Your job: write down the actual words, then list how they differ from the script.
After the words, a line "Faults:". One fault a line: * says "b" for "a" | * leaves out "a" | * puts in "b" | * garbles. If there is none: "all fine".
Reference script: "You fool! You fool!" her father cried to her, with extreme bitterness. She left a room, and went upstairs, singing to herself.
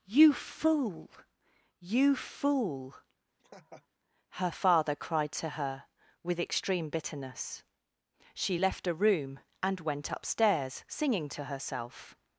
"You fool! You fool!" her father cried to her, with extreme bitterness. She left a room, and went upstairs, singing to herself.
Faults:
all fine